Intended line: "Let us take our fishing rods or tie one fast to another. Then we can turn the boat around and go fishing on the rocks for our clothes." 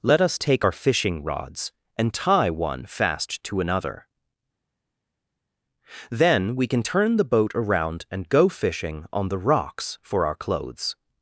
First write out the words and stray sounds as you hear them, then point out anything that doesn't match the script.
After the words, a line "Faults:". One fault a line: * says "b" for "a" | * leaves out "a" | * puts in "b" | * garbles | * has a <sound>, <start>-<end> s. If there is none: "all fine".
"Let us take our fishing rods and tie one fast to another. Then we can turn the boat around and go fishing on the rocks for our clothes."
Faults:
* says "and" for "or"